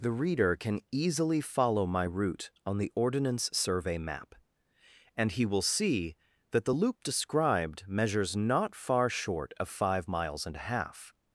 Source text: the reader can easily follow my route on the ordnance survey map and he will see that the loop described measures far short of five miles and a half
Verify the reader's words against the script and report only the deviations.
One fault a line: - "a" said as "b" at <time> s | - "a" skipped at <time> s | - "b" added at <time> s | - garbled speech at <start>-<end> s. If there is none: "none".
- "not" added at 8.3 s